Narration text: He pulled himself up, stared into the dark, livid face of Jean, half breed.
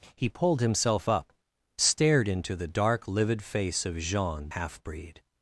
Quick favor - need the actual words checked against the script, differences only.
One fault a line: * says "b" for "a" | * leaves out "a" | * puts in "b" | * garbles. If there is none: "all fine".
all fine